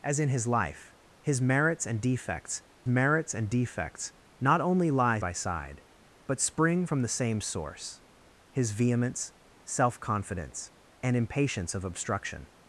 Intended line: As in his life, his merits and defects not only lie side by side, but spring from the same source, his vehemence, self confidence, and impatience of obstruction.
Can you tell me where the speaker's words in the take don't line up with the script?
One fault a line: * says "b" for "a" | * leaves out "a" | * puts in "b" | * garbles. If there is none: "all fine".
* puts in "merits and defects"
* leaves out "side"